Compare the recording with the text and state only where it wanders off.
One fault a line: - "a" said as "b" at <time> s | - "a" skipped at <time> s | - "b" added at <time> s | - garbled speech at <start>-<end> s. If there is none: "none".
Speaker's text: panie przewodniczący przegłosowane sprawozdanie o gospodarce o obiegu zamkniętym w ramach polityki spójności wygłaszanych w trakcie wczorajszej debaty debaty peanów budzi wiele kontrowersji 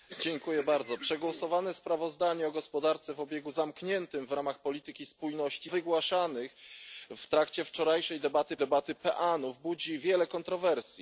none